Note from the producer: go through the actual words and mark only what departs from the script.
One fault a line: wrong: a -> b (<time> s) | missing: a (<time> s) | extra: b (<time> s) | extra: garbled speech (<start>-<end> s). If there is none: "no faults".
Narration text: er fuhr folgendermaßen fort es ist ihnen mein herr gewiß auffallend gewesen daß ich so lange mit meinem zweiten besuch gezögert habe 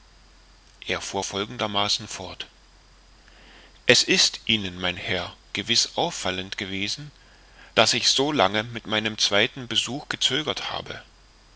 no faults